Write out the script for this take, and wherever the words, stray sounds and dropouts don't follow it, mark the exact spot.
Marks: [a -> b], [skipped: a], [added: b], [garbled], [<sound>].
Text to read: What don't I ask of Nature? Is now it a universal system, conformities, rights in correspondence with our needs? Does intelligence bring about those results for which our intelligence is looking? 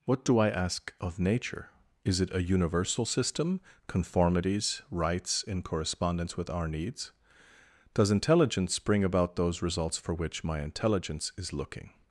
What [don't -> do] I ask of Nature? Is [skipped: now] it a universal system, conformities, rights in correspondence with our needs? Does intelligence bring about those results for which [our -> my] intelligence is looking?